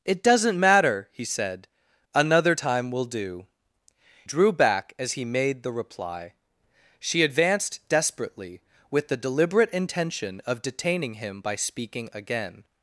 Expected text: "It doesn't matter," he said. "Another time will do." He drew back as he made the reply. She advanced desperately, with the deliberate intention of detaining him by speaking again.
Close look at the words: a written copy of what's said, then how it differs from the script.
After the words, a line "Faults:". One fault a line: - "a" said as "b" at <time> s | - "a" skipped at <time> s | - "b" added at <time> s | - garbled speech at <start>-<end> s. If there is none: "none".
"It doesn't matter," he said. "Another time will do." Drew back as he made the reply. She advanced desperately, with the deliberate intention of detaining him by speaking again.
Faults:
- "He" skipped at 3.5 s